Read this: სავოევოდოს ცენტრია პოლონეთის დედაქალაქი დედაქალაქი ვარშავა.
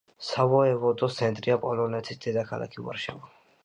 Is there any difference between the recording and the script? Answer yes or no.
yes